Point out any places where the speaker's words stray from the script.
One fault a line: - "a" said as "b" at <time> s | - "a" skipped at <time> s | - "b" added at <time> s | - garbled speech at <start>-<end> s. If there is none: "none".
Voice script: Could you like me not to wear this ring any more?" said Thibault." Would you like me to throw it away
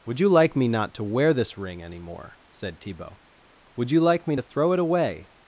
- "Could" said as "Would" at 0.1 s